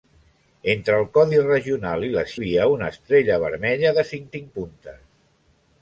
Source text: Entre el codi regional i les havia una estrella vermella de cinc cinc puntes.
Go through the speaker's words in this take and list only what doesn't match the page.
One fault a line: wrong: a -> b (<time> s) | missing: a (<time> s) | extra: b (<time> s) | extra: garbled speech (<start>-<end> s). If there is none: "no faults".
no faults